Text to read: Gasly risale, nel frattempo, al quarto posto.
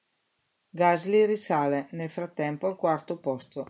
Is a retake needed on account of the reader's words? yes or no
no